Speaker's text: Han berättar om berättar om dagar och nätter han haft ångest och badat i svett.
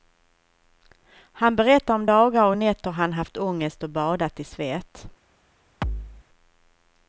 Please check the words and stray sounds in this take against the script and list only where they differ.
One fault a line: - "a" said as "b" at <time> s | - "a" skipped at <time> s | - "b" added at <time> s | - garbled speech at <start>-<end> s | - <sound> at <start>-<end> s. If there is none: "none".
- "berättar om" skipped at 2.1 s
- thud at 5.8-6.2 s